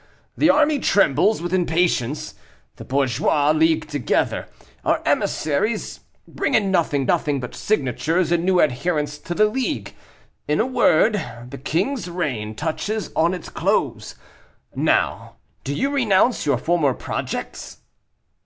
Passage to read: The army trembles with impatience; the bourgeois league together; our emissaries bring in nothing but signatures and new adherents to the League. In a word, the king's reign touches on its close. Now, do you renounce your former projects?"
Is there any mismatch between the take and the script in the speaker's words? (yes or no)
yes